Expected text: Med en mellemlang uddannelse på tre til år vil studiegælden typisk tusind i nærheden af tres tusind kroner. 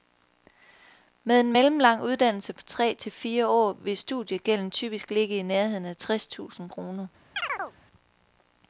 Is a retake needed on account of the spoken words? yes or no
yes